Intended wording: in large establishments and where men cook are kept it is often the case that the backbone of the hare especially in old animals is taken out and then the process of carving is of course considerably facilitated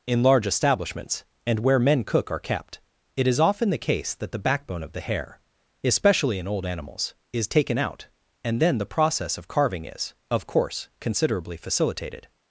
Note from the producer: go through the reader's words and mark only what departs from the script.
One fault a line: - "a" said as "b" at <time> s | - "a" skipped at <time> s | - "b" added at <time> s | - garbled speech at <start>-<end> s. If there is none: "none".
none